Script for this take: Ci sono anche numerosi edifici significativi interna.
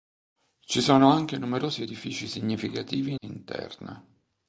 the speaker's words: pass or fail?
pass